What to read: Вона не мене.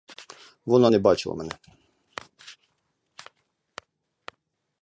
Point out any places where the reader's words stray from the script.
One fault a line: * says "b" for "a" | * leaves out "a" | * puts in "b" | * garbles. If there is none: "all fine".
* puts in "бачила"